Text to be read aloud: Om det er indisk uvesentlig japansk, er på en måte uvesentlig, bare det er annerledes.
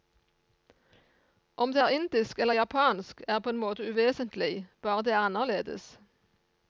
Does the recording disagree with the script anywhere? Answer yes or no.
yes